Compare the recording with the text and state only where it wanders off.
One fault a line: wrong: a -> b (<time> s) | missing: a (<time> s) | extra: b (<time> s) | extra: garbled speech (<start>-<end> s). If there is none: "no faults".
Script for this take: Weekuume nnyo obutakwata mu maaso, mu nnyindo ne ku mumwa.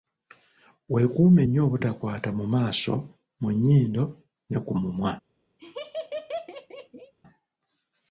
no faults